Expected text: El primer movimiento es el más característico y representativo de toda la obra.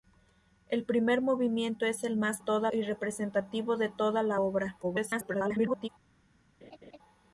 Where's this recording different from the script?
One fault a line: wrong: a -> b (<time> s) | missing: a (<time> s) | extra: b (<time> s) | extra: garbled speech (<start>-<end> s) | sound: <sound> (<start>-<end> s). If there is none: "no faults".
wrong: característico -> toda (2.4 s)
extra: garbled speech (4.8-5.9 s)
sound: laugh (6.6-7.0 s)